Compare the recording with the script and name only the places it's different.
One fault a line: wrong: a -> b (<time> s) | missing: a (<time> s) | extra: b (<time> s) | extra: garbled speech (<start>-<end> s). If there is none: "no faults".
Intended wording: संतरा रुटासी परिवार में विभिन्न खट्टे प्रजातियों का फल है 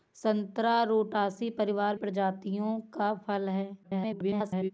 missing: में विभिन्न खट्टे (1.9 s)
extra: garbled speech (3.8-4.7 s)